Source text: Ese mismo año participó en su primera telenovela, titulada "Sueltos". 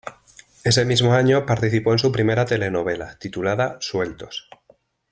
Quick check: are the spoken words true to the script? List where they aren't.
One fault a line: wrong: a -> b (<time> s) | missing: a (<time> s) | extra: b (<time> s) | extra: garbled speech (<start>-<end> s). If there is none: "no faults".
no faults